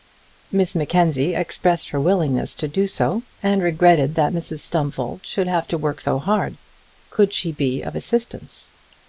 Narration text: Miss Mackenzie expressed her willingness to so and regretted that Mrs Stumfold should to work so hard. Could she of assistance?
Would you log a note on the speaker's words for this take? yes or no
yes